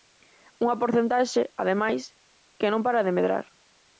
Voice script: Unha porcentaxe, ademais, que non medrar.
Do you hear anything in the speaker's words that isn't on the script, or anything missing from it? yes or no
yes